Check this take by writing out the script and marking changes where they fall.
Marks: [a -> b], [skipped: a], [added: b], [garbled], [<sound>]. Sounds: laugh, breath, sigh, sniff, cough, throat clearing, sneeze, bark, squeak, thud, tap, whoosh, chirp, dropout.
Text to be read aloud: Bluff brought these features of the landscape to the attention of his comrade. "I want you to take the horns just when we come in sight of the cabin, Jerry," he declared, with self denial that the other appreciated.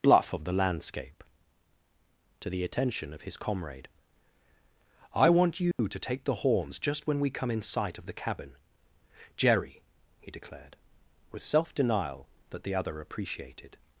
Bluff [skipped: brought these features] of the landscape to the attention of his comrade. "I want you [dropout] to take the horns just when we come in sight of the cabin, Jerry," he declared, with self denial that the other appreciated.